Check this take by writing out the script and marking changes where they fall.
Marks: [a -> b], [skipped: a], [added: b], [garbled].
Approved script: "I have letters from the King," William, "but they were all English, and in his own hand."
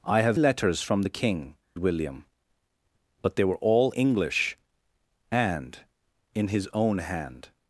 "I have letters from the King," William, "but they were all English, and in his own hand."